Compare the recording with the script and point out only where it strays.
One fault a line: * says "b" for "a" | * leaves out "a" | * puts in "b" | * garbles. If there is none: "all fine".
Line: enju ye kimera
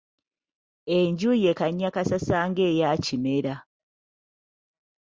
* puts in "kannyakassasa ng'eya"